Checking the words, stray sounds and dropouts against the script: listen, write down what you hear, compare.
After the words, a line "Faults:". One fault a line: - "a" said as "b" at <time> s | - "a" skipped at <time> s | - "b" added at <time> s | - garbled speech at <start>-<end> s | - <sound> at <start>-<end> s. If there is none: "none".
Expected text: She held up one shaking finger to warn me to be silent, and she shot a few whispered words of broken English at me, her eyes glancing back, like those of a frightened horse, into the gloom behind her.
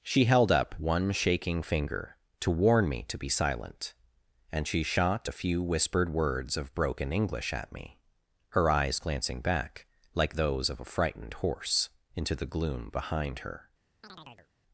She held up one shaking finger to warn me to be silent, and she shot a few whispered words of broken English at me, her eyes glancing back, like those of a frightened horse, into the gloom behind her.
Faults:
- chirp at 14.0-14.5 s